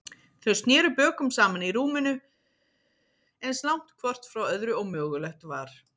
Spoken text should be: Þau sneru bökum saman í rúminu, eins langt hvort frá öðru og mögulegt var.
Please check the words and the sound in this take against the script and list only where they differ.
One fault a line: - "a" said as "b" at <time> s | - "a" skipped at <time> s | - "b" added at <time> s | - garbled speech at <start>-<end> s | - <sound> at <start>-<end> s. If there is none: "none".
none